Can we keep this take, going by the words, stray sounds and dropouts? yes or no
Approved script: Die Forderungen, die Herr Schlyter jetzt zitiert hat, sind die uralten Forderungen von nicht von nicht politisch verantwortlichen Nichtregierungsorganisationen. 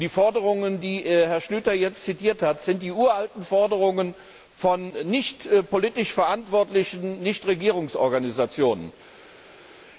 no